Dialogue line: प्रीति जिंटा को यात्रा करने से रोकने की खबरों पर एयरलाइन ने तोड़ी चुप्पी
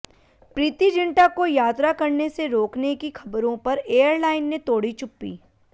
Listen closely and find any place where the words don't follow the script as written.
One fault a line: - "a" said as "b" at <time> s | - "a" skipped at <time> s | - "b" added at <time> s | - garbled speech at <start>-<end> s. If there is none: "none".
none